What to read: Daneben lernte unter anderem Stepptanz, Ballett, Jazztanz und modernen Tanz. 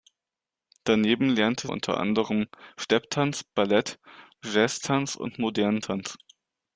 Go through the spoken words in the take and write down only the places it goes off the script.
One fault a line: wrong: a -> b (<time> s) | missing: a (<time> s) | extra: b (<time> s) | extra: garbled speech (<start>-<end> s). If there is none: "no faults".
no faults